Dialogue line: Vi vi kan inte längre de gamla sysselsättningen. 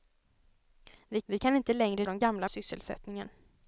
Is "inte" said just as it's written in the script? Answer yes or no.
yes